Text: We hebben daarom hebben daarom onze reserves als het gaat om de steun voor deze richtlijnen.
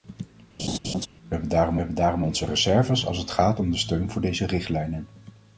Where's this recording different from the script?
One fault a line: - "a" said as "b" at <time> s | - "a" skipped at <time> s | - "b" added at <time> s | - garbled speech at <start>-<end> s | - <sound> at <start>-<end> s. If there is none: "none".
- laugh at 0.6-1.1 s